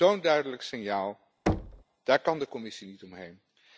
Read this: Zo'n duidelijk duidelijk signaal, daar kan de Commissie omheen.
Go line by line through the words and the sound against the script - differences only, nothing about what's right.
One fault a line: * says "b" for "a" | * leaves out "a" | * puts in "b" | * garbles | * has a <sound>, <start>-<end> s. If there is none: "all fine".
* leaves out "duidelijk"
* has a thud, 1.5-1.8 s
* puts in "niet"